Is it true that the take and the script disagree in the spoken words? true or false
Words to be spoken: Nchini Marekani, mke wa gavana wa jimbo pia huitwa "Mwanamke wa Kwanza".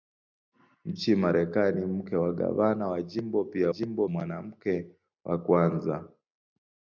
true